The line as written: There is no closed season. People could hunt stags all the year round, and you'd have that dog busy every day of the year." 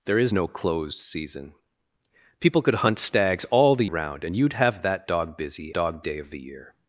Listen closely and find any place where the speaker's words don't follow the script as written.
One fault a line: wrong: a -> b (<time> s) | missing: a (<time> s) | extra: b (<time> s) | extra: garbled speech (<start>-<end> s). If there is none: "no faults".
missing: year (3.9 s)
wrong: every -> dog (5.7 s)